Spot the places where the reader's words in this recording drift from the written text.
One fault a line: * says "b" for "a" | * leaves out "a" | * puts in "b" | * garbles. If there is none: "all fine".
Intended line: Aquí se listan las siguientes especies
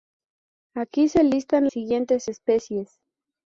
* leaves out "las"